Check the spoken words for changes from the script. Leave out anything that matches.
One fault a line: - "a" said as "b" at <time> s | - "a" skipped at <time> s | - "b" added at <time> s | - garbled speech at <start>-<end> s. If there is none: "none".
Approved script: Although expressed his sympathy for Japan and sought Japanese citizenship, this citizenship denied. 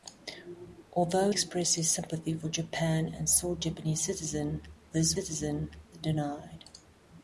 none